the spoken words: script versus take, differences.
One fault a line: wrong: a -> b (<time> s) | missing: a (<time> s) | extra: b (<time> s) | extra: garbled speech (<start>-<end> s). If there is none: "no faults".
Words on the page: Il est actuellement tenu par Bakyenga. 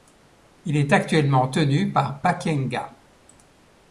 no faults